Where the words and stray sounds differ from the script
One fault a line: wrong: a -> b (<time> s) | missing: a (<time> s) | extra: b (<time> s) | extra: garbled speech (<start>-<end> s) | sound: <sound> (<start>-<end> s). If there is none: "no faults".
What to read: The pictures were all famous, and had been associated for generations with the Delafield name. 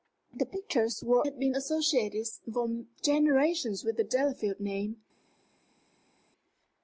missing: all famous and (1.2 s)